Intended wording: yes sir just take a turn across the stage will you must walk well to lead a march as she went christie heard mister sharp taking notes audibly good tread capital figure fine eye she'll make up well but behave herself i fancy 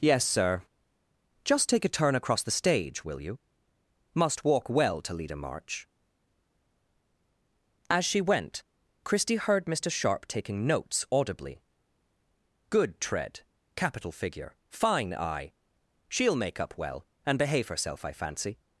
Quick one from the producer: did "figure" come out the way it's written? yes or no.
yes